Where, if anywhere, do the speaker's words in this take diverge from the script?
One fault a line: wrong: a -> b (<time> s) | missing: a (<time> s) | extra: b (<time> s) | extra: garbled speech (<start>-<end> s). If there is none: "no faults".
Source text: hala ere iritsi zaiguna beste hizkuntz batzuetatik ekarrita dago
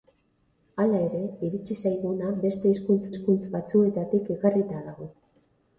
extra: hizkuntz (3.1 s)